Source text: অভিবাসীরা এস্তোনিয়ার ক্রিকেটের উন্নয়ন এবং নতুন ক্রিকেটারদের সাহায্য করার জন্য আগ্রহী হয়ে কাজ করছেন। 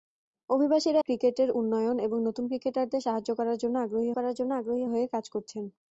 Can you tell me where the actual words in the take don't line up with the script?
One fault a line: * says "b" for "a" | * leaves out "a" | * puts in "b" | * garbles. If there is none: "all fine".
* leaves out "এস্তোনিয়ার"
* puts in "করার জন্য আগ্রহী"